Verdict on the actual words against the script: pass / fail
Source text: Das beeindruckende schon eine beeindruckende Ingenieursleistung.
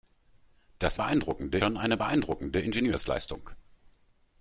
pass